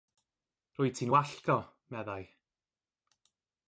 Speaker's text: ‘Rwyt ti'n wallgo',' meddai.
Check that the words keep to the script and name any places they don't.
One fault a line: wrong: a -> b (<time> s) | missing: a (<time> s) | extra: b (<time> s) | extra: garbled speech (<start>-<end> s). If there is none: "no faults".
no faults